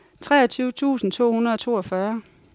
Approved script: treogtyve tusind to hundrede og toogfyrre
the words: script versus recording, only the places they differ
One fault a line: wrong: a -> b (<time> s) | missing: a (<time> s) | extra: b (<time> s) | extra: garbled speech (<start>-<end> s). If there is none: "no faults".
no faults